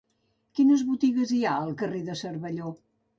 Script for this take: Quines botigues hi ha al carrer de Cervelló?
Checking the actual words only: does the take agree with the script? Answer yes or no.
yes